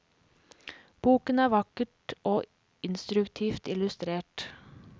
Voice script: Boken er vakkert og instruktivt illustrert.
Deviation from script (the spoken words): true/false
false